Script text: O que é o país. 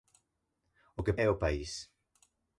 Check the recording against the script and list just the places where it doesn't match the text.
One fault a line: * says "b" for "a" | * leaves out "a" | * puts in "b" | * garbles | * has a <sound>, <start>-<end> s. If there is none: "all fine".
all fine